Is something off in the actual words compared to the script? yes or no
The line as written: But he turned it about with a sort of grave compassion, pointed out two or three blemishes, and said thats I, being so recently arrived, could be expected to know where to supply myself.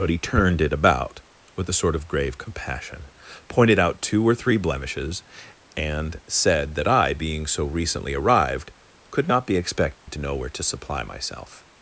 yes